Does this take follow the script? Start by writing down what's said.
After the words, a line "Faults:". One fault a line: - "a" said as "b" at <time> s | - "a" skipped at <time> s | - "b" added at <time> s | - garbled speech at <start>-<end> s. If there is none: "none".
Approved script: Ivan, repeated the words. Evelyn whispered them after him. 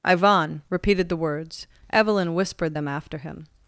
Ivan, repeated the words. Evelyn whispered them after him.
Faults:
none